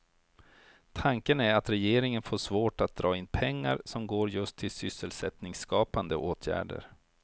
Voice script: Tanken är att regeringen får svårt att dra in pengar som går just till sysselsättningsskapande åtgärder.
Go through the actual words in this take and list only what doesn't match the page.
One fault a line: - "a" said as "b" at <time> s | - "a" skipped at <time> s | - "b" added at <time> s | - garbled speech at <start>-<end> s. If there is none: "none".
none